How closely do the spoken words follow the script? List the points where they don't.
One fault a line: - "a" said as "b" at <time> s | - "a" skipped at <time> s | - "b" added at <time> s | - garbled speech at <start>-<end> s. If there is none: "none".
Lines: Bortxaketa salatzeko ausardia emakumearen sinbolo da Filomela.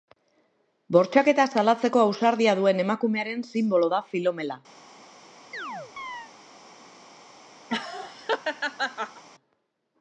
- "duen" added at 2.6 s